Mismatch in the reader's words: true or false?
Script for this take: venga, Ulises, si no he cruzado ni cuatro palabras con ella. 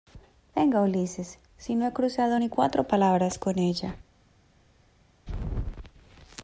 false